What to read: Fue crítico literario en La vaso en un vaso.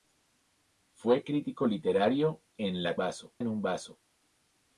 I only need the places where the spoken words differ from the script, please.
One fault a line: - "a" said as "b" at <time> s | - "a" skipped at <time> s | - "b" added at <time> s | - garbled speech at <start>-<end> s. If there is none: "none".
none